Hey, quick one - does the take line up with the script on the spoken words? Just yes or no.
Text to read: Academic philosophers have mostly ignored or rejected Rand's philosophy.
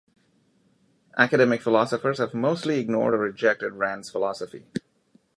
yes